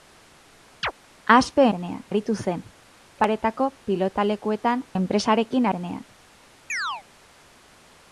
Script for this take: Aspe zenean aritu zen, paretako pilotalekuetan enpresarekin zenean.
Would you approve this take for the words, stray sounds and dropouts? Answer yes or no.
no